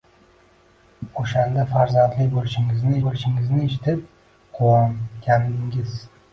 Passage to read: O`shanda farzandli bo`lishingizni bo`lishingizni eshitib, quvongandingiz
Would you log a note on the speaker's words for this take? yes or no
no